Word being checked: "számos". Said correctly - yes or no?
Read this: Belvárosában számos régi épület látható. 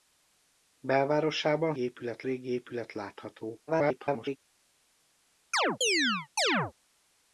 no